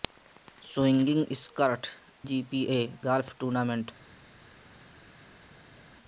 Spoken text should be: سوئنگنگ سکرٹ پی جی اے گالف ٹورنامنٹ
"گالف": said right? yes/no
yes